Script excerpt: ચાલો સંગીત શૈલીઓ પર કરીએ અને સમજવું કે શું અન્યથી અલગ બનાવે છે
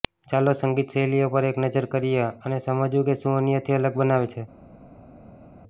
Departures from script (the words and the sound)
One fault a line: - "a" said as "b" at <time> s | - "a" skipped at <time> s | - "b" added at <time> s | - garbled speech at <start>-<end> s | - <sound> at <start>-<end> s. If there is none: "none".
- "એક નજર" added at 1.5 s